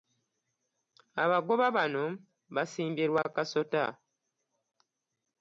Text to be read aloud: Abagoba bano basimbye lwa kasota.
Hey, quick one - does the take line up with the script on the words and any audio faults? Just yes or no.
yes